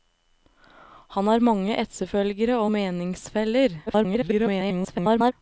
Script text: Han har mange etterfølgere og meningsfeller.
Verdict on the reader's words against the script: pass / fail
fail